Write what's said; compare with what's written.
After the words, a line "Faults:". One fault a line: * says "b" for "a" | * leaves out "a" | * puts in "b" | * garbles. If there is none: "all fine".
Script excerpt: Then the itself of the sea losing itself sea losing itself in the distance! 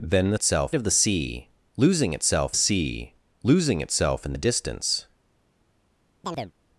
Then the itself of the sea losing itself sea losing itself in the distance!
Faults:
all fine